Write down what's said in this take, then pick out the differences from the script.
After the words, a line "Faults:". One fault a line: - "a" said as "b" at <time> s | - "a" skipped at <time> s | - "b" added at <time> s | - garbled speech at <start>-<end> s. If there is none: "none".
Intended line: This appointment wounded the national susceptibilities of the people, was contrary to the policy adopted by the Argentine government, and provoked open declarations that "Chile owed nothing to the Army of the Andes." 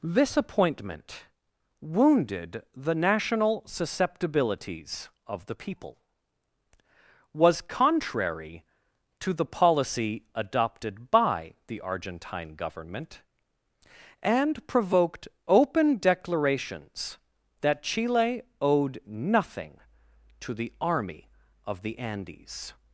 This appointment wounded the national susceptibilities of the people, was contrary to the policy adopted by the Argentine government, and provoked open declarations that "Chile owed nothing to the Army of the Andes."
Faults:
none